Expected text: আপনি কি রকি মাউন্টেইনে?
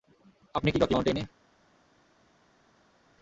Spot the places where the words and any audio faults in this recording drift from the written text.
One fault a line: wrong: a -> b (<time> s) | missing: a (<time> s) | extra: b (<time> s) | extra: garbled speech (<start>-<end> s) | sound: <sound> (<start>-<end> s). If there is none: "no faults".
no faults